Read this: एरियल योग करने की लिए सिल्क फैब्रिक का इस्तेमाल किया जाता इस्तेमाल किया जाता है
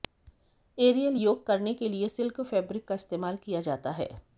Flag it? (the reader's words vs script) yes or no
yes